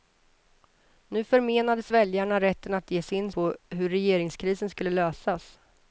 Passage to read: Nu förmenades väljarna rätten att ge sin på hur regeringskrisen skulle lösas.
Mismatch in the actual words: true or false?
false